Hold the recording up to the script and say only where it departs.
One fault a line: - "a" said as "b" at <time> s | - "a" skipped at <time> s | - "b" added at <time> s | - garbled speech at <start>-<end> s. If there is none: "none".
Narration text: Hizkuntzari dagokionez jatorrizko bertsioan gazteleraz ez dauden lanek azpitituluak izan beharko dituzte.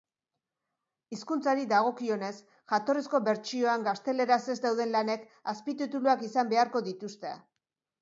none